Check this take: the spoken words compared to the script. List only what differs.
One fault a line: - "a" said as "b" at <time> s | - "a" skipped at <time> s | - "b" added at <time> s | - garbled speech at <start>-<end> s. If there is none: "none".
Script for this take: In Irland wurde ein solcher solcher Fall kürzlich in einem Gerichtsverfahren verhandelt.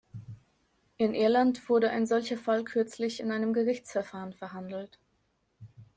- "solcher" skipped at 2.4 s